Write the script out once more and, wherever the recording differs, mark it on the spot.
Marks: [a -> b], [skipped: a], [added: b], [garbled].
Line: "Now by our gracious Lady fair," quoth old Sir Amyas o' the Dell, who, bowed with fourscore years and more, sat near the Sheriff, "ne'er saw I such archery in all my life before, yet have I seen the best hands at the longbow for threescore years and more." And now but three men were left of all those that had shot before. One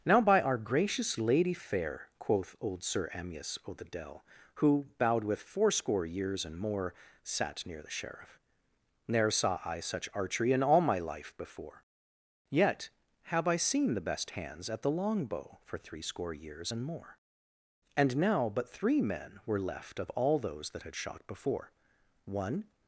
"Now by our gracious Lady fair," quoth old Sir Amyas o' the Dell, who, bowed with fourscore years and more, sat near the Sheriff, "ne'er saw I such archery in all my life before, yet have I seen the best hands at the longbow for threescore years and more." And now but three men were left of all those that had shot before. One